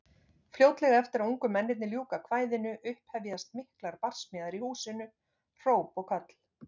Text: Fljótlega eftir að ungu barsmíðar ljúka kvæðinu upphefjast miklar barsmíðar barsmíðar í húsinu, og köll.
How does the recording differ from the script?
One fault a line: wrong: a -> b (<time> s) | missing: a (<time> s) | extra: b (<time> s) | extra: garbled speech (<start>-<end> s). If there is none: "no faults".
wrong: barsmíðar -> mennirnir (1.6 s)
missing: barsmíðar (4.6 s)
extra: hróp (5.7 s)